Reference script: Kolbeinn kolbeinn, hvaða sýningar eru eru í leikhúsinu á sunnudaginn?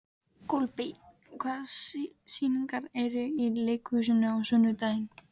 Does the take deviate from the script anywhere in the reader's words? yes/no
yes